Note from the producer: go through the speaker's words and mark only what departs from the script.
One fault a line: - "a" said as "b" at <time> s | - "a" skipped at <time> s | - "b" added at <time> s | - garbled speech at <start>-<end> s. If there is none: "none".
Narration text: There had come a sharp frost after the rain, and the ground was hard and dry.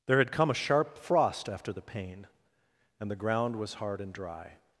- "rain" said as "pain" at 1.8 s